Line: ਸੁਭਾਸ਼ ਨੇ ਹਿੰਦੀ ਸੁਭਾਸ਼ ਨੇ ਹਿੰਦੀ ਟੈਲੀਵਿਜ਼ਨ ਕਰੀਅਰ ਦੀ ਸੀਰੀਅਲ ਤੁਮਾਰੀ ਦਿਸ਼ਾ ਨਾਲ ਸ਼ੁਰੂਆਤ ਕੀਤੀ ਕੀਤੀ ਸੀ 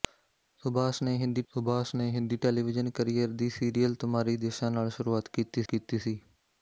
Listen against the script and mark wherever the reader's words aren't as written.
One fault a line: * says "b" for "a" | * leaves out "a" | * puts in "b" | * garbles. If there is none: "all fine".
all fine